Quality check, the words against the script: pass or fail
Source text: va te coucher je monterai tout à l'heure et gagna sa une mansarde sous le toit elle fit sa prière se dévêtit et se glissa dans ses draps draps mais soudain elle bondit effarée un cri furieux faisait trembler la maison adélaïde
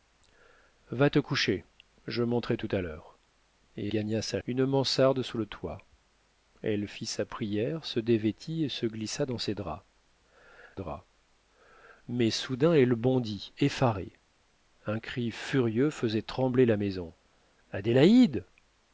pass